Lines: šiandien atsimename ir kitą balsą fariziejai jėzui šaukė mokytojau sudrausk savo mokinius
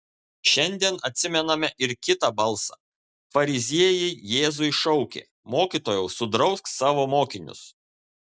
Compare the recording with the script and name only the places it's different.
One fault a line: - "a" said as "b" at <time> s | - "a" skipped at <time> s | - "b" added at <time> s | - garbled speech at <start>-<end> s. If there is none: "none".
none